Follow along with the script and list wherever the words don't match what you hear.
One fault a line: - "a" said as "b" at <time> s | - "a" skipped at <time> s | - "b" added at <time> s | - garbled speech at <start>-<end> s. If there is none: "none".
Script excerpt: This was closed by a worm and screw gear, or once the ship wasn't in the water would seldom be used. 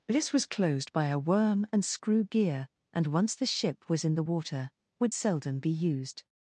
- "or" said as "and" at 2.9 s
- "wasn't" said as "was" at 3.9 s